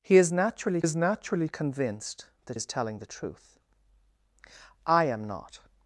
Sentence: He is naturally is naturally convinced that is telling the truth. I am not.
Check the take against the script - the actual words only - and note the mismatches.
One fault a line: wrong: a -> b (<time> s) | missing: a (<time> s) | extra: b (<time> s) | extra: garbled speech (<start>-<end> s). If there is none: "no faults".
no faults